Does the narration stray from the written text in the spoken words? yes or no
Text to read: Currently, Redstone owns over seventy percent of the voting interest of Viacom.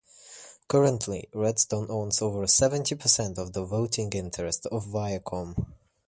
no